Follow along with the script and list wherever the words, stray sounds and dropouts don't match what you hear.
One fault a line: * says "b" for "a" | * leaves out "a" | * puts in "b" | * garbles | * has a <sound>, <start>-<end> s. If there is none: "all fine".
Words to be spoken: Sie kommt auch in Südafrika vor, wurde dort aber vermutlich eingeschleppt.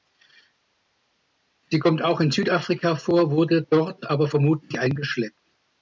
all fine